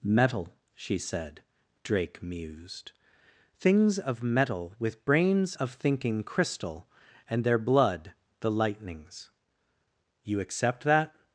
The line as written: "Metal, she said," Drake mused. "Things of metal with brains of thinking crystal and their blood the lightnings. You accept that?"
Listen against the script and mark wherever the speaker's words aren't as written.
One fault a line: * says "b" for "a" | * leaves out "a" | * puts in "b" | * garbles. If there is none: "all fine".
all fine